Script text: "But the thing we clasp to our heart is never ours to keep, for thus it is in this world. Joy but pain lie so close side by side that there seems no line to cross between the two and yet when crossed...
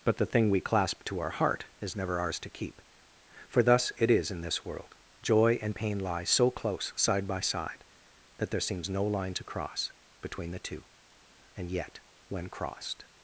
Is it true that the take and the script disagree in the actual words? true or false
true